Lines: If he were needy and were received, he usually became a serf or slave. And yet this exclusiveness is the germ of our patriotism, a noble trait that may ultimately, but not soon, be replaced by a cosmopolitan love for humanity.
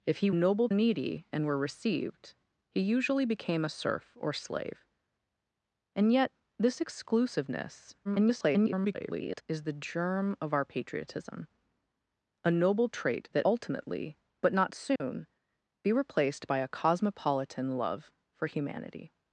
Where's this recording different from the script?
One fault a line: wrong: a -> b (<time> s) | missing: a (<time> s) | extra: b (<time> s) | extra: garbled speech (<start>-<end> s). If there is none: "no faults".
wrong: were -> noble (0.3 s)
extra: garbled speech (8.0-9.4 s)
missing: may (13.5 s)